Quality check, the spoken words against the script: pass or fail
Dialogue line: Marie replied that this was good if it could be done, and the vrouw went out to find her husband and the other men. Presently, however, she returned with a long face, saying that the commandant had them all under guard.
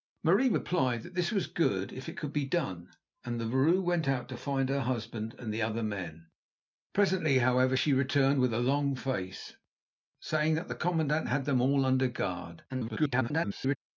fail